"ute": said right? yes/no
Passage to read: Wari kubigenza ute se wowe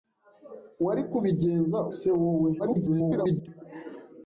no